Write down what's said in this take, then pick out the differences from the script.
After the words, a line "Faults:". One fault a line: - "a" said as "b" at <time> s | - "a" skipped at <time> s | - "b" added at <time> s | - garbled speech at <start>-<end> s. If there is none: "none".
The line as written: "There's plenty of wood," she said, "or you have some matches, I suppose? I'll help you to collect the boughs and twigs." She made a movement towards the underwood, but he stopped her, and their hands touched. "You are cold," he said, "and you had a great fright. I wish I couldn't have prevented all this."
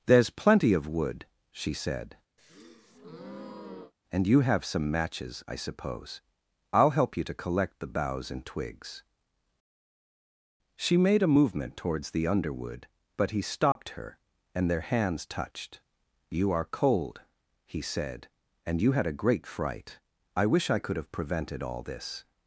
"There's plenty of wood," she said, "and you have some matches, I suppose? I'll help you to collect the boughs and twigs." She made a movement towards the underwood, but he stopped her, and their hands touched. "You are cold," he said, "and you had a great fright. I wish I could have prevented all this."
Faults:
- "or" said as "and" at 4.1 s
- "couldn't" said as "could" at 20.8 s